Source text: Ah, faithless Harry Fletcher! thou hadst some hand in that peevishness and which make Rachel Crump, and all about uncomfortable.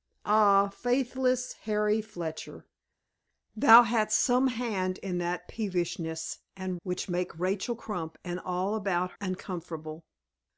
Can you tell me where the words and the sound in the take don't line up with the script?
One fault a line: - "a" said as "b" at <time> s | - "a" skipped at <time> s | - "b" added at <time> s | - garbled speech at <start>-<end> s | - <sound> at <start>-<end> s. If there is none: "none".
none